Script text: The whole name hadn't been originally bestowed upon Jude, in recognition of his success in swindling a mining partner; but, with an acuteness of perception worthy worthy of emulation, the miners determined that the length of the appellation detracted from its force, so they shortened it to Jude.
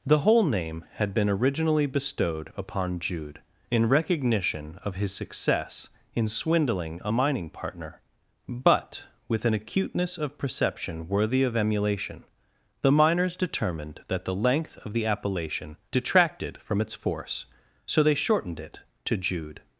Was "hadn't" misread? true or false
true